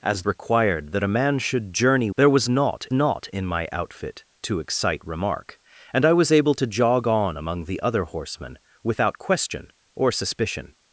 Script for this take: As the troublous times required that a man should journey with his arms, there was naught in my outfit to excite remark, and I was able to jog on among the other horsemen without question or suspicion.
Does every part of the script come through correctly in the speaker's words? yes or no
no